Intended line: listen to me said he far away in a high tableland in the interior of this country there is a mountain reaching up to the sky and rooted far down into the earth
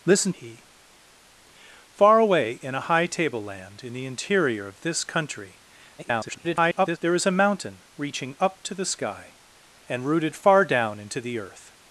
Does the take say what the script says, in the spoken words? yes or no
no